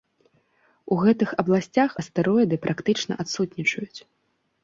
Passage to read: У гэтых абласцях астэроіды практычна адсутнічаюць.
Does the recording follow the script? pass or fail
pass